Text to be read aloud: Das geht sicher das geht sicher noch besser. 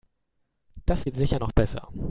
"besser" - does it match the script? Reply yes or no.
yes